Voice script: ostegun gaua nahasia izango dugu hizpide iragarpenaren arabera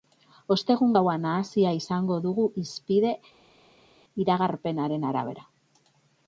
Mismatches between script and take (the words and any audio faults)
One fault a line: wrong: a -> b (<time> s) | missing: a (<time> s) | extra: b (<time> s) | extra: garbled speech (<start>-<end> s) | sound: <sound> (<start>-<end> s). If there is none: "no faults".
no faults